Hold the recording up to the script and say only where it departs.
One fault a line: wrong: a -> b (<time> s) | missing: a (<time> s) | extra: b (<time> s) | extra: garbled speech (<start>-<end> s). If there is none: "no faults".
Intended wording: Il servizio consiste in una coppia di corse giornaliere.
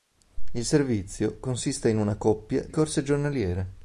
missing: di (2.6 s)